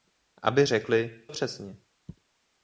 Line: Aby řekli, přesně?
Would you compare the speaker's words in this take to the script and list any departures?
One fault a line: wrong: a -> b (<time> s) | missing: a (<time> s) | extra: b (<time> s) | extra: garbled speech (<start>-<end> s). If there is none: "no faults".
no faults